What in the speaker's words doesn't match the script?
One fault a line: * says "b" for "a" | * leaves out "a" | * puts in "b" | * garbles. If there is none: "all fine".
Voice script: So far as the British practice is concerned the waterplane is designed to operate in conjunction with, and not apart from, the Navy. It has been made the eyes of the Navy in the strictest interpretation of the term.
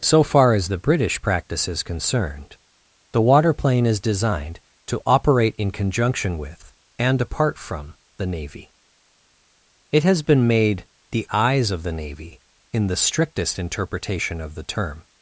* leaves out "not"